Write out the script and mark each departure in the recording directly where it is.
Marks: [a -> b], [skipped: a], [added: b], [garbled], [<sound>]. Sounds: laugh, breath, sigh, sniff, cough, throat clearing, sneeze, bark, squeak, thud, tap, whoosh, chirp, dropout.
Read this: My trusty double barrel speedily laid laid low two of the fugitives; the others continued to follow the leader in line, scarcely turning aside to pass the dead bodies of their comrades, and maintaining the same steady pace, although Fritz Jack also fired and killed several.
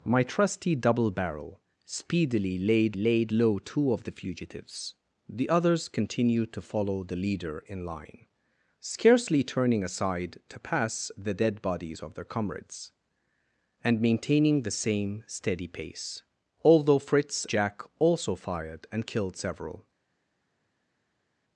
My trusty double barrel speedily laid laid low two of the fugitives; the others continued to follow the leader in line, scarcely turning aside to pass the dead bodies of their comrades, and maintaining the same steady pace, although Fritz Jack also fired and killed several.